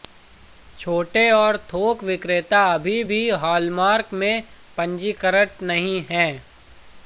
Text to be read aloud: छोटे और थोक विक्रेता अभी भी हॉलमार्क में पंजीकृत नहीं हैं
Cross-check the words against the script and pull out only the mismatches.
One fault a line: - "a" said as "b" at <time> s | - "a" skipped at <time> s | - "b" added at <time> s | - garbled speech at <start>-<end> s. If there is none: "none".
none